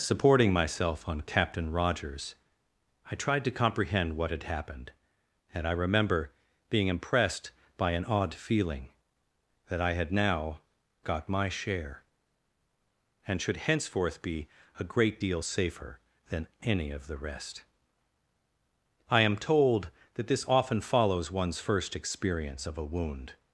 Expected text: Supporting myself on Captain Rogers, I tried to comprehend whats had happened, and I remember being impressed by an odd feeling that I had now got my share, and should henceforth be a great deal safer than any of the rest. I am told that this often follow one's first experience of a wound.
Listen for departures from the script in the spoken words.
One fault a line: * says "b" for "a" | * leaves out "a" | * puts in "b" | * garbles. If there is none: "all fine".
* says "what" for "whats"
* says "follows" for "follow"